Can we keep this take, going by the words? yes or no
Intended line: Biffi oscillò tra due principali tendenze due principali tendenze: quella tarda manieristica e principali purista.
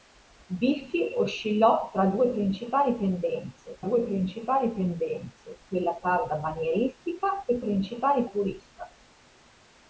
yes